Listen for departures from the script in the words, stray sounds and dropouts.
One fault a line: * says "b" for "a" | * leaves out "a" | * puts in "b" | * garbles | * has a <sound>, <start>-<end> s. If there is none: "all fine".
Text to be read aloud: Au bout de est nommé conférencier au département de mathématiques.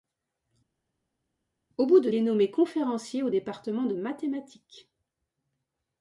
all fine